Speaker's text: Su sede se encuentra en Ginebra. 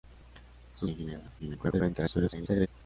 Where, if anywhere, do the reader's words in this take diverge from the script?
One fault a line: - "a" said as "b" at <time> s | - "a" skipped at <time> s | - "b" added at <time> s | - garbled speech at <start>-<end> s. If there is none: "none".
- "sede se encuentra" skipped at 0.9 s
- garbled speech at 1.4-2.7 s